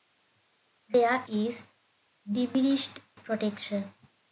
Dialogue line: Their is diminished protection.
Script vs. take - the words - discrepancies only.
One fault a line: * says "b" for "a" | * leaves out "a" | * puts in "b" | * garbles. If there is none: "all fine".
all fine